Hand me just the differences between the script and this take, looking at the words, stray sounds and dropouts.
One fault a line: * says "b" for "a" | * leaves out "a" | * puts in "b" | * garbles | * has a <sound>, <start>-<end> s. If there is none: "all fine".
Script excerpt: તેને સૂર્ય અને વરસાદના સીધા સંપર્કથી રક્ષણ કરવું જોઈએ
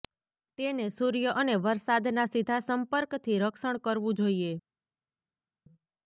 all fine